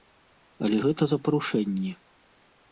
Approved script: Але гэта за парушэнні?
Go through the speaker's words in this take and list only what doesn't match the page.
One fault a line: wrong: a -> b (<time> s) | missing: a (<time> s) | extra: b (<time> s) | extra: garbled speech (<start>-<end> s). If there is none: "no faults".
no faults